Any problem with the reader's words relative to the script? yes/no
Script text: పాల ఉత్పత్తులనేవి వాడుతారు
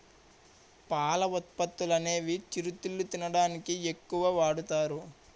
yes